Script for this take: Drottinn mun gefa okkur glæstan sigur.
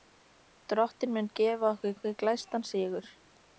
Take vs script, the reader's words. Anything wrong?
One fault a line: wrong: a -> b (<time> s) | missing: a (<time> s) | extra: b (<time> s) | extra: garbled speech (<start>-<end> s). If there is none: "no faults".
extra: okkur (2.0 s)